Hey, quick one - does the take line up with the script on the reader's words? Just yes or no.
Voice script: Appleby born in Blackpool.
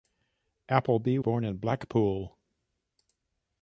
yes